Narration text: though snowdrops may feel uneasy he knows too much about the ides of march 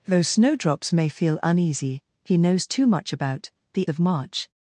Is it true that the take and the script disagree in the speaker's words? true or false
true